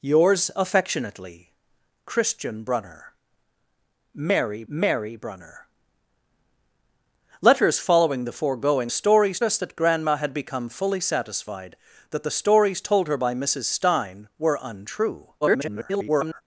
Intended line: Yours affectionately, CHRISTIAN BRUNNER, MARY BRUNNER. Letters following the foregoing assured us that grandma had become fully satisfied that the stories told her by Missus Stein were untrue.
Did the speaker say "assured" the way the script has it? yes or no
no